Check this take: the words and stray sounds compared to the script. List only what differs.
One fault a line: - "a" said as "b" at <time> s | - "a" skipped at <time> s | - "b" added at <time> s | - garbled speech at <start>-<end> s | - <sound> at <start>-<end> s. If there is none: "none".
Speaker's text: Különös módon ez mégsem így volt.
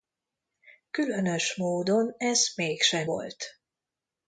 - "így" skipped at 3.1 s